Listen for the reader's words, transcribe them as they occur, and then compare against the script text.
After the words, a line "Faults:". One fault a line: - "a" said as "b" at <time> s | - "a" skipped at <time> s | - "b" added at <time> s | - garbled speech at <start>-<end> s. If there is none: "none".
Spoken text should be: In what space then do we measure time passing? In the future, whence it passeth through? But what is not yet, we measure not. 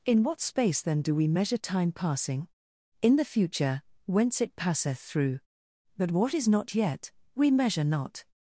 In what space then do we measure time passing? In the future, whence it passeth through? But what is not yet, we measure not.
Faults:
none